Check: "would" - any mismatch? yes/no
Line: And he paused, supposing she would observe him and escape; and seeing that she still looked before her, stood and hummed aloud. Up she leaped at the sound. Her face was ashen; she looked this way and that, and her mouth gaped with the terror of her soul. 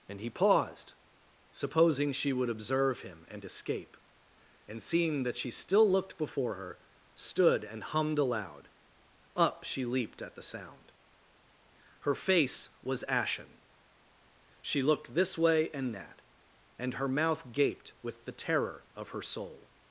no